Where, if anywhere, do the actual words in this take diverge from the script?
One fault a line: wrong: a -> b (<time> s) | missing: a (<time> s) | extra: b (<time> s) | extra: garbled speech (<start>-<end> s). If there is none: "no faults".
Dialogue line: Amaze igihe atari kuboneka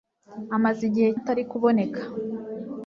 no faults